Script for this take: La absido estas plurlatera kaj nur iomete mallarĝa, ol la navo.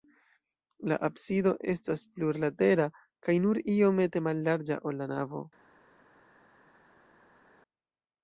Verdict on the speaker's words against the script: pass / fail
pass